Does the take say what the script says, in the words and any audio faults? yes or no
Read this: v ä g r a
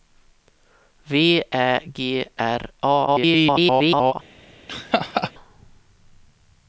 no